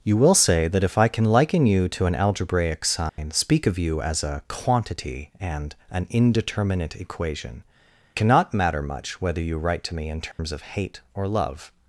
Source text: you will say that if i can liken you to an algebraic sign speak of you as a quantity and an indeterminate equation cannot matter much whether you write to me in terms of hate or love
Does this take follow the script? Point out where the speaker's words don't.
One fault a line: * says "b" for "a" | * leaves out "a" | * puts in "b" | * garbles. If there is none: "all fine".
all fine